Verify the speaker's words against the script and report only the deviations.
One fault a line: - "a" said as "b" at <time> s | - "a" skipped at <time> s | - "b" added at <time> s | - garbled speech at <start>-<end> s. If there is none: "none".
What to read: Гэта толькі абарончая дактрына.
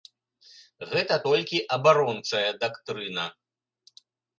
none